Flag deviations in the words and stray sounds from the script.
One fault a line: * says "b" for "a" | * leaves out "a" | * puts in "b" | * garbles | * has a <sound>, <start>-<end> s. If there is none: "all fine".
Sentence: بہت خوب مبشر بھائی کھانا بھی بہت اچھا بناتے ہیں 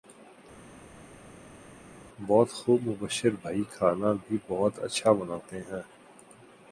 all fine